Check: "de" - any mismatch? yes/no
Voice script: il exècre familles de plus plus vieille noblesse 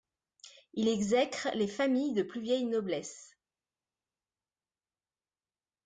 no